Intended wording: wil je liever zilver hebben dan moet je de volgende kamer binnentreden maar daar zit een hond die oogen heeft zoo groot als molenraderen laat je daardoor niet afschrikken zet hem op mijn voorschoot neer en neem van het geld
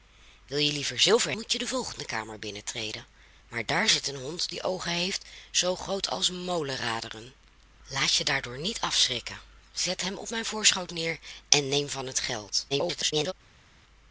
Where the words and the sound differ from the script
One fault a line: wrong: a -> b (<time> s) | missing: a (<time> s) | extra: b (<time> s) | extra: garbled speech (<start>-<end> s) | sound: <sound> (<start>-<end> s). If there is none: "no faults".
missing: hebben dan (1.3 s)
extra: garbled speech (12.7-13.3 s)